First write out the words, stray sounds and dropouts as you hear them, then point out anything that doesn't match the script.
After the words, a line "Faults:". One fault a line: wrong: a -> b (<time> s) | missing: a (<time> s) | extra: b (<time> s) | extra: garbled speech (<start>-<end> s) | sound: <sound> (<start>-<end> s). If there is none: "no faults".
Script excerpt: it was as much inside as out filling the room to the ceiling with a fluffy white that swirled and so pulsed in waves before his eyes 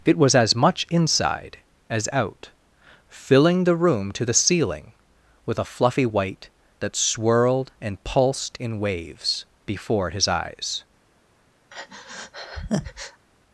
it was as much inside as out filling the room to the ceiling with a fluffy white that swirled and pulsed in waves before his eyes
Faults:
missing: so (8.0 s)
sound: breath (11.7-13.2 s)